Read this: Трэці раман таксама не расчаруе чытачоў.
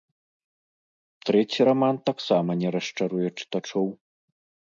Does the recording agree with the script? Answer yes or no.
yes